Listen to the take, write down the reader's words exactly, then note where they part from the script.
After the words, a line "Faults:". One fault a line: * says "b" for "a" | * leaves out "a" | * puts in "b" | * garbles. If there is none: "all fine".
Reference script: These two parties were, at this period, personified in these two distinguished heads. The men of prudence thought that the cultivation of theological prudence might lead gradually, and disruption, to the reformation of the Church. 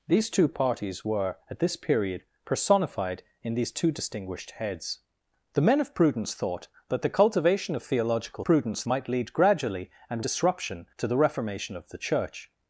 These two parties were, at this period, personified in these two distinguished heads. The men of prudence thought that the cultivation of theological prudence might lead gradually, and disruption, to the reformation of the Church.
Faults:
all fine